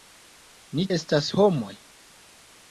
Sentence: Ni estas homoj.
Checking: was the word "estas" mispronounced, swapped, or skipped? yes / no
no